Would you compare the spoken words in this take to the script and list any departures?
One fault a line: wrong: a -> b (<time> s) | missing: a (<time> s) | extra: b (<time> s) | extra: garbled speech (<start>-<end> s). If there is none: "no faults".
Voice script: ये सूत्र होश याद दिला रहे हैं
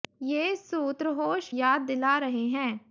no faults